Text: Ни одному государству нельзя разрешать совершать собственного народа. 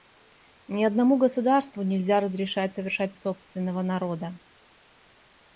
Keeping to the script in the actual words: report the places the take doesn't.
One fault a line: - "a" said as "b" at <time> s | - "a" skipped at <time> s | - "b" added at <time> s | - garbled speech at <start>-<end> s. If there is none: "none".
none